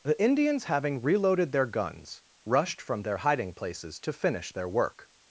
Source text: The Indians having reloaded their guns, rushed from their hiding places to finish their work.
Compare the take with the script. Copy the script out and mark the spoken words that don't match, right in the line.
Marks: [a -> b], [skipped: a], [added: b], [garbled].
The Indians having reloaded their guns, rushed from their hiding places to finish their work.